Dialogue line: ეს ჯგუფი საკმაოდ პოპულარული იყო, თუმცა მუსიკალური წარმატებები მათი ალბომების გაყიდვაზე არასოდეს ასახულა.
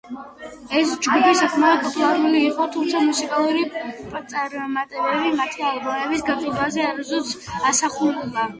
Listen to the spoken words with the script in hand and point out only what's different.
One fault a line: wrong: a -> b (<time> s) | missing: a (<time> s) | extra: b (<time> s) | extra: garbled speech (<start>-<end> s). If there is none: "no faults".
no faults